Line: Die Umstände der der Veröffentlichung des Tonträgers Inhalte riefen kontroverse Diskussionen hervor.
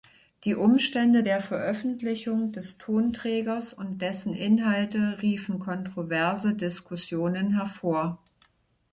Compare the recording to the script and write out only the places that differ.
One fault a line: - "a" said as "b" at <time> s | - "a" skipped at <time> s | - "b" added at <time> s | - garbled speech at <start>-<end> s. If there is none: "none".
- "der" skipped at 1.4 s
- "und dessen" added at 3.7 s